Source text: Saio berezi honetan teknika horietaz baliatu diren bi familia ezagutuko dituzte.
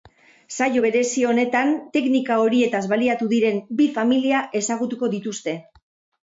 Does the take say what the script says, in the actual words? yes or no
yes